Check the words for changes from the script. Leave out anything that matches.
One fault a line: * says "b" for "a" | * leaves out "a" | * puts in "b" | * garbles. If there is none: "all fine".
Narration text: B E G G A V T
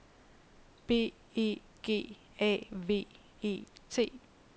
* leaves out "G"
* puts in "E"